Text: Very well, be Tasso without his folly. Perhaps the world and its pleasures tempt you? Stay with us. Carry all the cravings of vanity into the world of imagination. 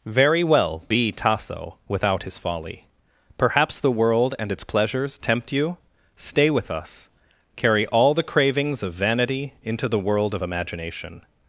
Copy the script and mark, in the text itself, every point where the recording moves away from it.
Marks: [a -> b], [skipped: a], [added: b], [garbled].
Very well, be Tasso without his folly. Perhaps the world and its pleasures tempt you? Stay with us. Carry all the cravings of vanity into the world of imagination.